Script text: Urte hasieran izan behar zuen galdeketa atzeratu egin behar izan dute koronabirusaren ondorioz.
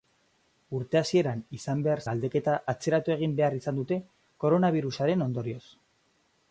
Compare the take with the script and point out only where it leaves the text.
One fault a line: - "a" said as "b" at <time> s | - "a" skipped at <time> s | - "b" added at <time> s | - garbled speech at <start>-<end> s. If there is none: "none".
- "zuen" skipped at 2.0 s